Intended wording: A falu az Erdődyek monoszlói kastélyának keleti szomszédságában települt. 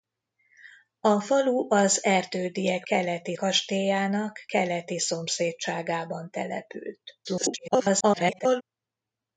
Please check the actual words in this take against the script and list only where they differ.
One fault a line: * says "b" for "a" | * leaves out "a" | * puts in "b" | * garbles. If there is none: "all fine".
* says "keleti" for "monoszlói"
* garbles